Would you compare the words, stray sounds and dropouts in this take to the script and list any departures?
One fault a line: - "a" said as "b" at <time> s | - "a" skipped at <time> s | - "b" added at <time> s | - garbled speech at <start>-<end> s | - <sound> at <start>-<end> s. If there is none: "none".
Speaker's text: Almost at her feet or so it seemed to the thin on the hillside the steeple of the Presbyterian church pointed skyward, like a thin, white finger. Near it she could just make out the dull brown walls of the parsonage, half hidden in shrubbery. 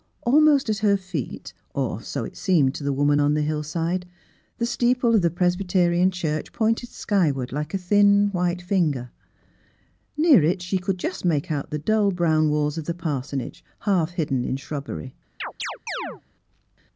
- "thin" said as "woman" at 2.9 s
- chirp at 15.4-16.2 s